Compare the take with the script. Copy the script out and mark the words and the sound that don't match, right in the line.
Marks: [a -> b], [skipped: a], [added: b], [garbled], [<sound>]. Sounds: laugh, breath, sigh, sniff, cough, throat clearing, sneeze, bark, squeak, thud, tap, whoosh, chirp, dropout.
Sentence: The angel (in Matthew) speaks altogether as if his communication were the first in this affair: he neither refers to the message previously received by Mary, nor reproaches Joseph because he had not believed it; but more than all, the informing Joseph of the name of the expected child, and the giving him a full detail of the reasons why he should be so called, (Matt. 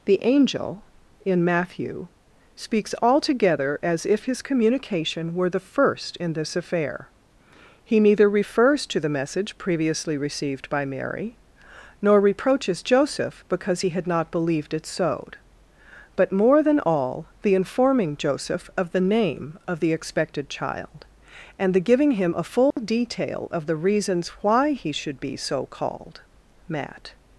The angel (in Matthew) speaks altogether as if his communication were the first in this affair: he neither refers to the message previously received by Mary, nor reproaches Joseph because he had not believed it; [added: sowed] but more than all, the informing Joseph of the name of the expected child, and the giving him a full [dropout] detail of the reasons why he should be so called, (Matt.